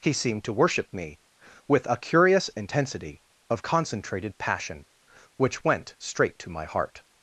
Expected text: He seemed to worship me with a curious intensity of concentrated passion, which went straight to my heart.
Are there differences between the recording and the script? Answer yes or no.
no